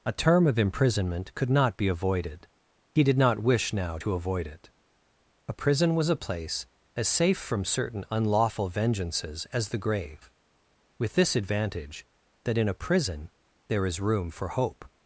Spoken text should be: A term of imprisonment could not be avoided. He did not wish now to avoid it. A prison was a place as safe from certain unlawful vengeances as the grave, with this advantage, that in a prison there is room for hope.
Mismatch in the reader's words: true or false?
false